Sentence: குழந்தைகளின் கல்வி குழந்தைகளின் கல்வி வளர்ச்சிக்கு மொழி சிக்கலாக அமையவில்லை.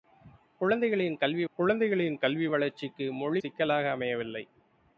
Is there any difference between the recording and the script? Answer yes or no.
no